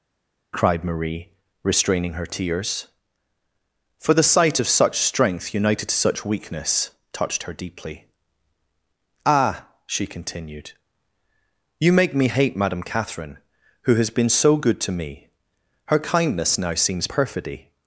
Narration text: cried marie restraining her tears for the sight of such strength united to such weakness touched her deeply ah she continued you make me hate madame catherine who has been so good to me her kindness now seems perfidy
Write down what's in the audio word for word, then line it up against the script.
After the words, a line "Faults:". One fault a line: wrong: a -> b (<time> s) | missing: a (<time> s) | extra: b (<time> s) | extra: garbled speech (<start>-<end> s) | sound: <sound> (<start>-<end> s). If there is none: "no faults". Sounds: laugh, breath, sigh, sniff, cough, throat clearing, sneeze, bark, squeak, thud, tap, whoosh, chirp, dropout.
cried marie restraining her tears for the sight of such strength united to such weakness touched her deeply ah she continued you make me hate madame catherine who has been so good to me her kindness now seems perfidy
Faults:
no faults